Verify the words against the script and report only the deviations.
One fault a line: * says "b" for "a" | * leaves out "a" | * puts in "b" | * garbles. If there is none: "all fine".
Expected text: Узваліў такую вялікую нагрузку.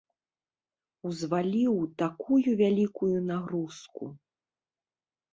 all fine